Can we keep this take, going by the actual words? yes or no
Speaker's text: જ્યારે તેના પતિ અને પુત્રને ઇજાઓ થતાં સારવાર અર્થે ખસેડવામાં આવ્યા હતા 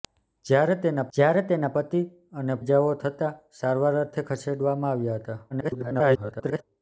no